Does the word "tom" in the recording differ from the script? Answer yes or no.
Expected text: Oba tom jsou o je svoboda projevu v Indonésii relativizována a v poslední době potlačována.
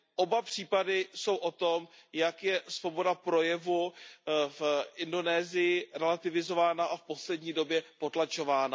yes